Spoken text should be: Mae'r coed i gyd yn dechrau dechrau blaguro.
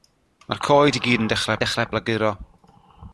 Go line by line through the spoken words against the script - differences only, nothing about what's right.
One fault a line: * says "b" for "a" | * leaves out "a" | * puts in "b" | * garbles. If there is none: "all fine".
all fine